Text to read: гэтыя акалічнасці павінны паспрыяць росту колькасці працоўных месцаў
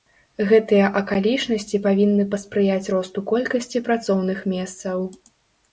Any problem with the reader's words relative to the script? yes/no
no